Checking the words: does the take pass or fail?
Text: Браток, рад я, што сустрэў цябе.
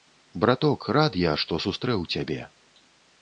pass